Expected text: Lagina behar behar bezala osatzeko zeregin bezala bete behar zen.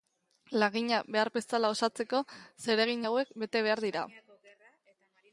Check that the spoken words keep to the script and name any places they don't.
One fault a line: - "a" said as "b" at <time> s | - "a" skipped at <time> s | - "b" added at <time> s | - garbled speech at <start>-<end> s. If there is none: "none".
- "behar" skipped at 1.3 s
- "bezala" said as "hauek" at 3.1 s
- "zen" said as "dira" at 3.8 s